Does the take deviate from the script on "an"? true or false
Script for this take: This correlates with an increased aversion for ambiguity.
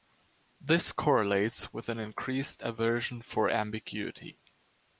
false